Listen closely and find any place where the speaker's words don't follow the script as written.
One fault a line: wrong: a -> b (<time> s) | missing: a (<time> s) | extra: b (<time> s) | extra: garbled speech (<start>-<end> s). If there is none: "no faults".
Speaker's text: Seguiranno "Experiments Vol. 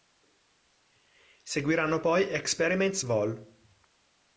extra: poi (2.0 s)